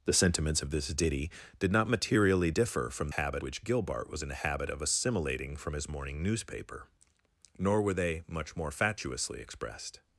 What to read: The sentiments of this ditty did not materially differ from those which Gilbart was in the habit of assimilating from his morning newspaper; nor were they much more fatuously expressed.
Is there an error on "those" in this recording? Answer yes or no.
yes